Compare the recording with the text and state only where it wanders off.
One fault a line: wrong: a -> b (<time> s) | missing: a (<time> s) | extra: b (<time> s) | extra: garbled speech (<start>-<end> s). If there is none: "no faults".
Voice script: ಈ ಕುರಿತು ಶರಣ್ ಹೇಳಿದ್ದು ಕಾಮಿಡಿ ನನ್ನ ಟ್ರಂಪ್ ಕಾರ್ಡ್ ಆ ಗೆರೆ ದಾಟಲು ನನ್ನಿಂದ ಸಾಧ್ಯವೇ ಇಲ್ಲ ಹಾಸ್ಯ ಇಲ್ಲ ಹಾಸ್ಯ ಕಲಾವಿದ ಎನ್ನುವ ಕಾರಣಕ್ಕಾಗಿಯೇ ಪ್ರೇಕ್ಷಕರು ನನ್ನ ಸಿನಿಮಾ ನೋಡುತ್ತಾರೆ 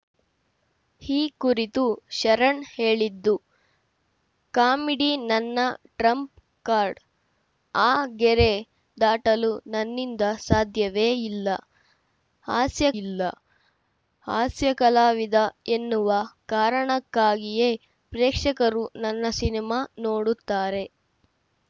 no faults